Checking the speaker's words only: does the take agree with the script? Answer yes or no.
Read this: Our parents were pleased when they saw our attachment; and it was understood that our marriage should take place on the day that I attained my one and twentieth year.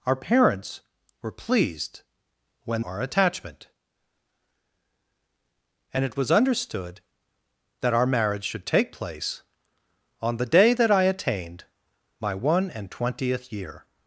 no